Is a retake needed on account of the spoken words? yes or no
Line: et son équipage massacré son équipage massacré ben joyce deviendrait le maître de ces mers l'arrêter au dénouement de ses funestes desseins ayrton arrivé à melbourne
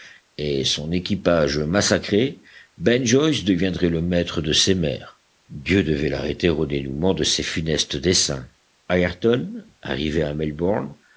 yes